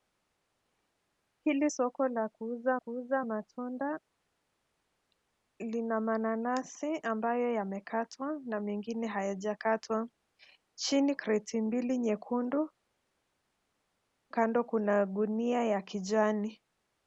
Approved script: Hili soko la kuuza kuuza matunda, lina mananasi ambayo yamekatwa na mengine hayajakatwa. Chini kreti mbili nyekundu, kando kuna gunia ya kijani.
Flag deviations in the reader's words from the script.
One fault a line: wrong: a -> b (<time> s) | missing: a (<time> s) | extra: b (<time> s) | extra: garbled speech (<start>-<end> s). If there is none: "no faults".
no faults